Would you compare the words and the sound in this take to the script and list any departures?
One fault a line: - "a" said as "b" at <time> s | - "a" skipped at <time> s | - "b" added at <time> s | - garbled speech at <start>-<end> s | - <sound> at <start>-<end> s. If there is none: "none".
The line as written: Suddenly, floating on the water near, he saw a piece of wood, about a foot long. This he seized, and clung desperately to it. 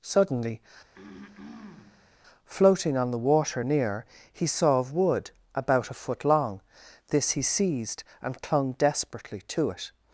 - throat clearing at 0.9-2.1 s
- "a piece" skipped at 4.8 s